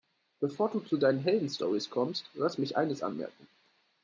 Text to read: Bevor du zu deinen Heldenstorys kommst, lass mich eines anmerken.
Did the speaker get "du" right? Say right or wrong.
right